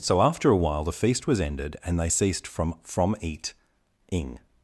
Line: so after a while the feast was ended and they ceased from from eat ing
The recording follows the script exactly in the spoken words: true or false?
true